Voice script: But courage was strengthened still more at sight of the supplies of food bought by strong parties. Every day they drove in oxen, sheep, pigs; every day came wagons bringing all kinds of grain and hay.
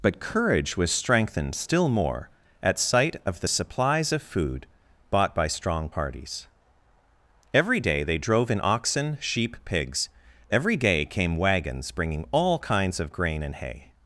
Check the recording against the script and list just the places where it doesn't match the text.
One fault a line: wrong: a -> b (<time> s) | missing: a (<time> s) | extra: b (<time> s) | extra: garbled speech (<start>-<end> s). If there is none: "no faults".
no faults